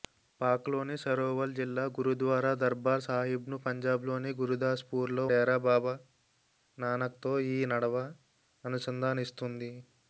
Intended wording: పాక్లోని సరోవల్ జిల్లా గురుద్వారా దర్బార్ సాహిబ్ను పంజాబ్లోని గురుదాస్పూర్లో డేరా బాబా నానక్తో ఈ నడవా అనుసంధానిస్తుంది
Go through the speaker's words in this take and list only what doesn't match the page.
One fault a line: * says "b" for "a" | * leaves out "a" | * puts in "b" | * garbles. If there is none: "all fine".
all fine